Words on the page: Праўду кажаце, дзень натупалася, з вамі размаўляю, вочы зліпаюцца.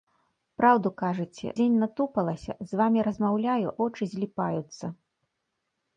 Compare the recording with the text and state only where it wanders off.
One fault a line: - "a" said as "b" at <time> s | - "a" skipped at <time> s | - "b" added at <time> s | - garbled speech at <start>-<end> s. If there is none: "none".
none